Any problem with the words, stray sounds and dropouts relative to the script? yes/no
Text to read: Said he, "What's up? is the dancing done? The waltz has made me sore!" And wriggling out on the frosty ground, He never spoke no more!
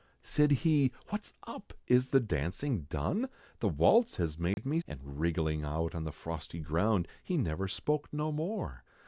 yes